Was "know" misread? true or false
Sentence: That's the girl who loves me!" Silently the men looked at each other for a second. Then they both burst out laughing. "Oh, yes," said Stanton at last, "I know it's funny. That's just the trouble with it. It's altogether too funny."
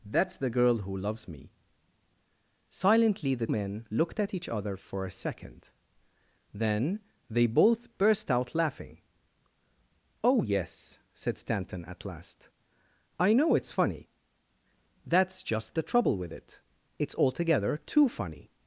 false